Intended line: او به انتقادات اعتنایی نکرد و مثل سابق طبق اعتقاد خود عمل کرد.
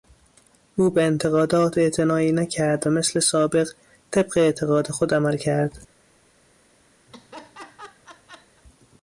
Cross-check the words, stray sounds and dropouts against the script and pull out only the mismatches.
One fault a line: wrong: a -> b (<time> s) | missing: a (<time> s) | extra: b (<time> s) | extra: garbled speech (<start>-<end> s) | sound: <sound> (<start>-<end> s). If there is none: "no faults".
sound: laugh (7.1-8.6 s)